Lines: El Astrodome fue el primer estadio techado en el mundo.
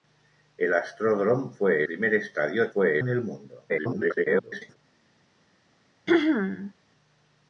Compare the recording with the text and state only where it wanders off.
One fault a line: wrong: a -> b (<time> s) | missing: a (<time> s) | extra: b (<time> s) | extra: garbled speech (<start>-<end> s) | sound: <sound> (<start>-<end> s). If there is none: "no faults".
missing: el (1.8 s)
wrong: techado -> fue (2.7 s)
extra: garbled speech (3.7-4.8 s)
sound: throat clearing (6.1-6.7 s)